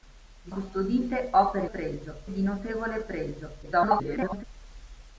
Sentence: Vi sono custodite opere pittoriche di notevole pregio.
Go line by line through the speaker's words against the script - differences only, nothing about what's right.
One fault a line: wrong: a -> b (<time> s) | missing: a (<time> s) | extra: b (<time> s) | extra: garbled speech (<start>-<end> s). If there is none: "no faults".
missing: sono (0.5 s)
wrong: pittoriche -> pregio (1.6 s)
extra: garbled speech (3.6-4.4 s)